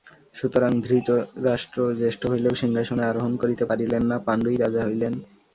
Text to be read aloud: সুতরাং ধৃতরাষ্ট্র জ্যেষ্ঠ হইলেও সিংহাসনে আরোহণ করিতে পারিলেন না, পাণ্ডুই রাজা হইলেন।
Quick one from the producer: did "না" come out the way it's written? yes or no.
yes